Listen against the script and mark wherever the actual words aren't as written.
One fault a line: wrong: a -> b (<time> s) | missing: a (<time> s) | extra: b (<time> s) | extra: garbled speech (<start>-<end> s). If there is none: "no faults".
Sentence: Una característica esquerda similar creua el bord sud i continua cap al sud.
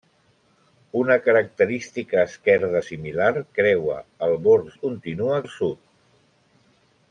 missing: sud (4.7 s)
missing: cap (5.4 s)